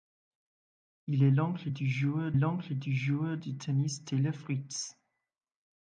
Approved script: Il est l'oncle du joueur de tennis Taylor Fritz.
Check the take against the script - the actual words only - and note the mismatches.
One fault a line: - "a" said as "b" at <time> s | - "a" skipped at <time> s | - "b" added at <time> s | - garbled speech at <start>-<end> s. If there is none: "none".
- "l'oncle du joueur" added at 2.3 s